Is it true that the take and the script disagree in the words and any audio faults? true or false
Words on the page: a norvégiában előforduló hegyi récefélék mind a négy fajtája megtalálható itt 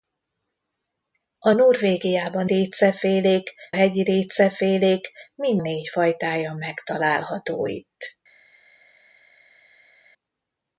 true